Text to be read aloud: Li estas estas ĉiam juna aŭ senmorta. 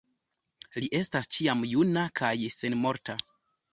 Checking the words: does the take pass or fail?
fail